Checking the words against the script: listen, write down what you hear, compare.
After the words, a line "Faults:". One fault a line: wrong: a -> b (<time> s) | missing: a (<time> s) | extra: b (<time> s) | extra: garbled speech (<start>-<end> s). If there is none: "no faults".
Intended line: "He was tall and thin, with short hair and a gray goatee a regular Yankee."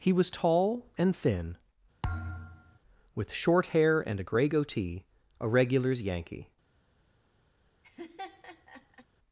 "He was tall and thin, with short hair and a gray goatee a regulars Yankee."
Faults:
wrong: regular -> regulars (5.5 s)